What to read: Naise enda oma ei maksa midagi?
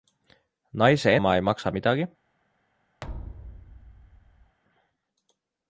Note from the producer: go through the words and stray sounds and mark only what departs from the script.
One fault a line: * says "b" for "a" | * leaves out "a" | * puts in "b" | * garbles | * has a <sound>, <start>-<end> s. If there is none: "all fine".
* leaves out "enda"
* has a thud, 3.0-4.6 s